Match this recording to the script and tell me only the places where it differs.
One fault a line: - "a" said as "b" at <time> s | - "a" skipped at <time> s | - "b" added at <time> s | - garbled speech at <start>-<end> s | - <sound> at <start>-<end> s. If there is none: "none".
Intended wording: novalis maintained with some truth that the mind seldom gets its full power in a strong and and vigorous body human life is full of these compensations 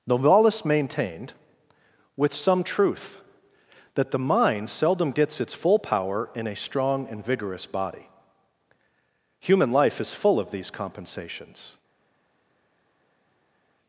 - "and" skipped at 7.2 s